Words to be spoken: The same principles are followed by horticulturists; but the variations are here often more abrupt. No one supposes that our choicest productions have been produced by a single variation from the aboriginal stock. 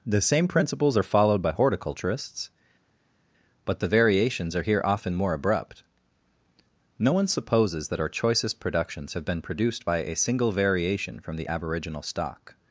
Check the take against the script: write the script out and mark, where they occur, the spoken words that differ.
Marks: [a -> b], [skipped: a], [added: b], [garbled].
The same principles are followed by horticulturists; but the variations are here often more abrupt. No one supposes that our choicest productions have been produced by a single variation from the aboriginal stock.